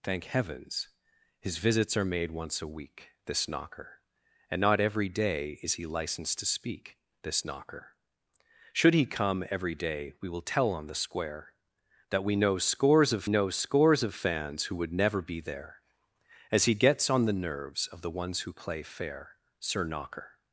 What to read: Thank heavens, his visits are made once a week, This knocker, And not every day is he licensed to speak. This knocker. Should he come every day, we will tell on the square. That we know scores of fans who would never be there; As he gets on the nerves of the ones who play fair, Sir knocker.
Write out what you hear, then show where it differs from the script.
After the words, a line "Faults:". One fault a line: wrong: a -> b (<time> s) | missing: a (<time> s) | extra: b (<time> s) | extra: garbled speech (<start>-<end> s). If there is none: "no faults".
Thank heavens, his visits are made once a week, This knocker, And not every day is he licensed to speak. This knocker. Should he come every day, we will tell on the square. That we know scores of know scores of fans who would never be there; As he gets on the nerves of the ones who play fair, Sir knocker.
Faults:
extra: know scores of (13.3 s)